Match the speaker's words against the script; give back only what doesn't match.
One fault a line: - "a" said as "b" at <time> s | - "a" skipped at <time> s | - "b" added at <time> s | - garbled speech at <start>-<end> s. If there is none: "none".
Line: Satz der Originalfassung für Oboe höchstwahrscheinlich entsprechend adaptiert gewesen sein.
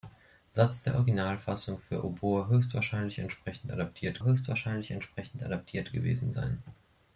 - "höchstwahrscheinlich entsprechend adaptiert" added at 4.2 s